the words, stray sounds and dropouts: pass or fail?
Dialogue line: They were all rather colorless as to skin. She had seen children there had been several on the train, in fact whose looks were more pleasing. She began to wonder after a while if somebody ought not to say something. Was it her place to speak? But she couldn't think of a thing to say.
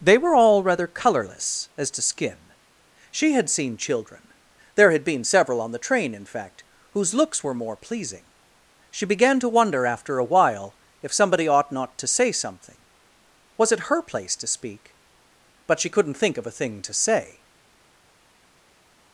pass